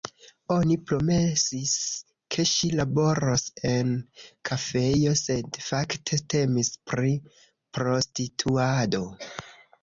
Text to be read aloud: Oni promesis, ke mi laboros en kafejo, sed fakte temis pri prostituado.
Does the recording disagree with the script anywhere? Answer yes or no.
yes